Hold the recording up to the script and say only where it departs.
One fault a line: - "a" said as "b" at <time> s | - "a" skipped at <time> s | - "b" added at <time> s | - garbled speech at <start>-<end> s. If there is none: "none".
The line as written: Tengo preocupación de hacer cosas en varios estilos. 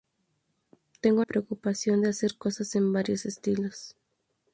none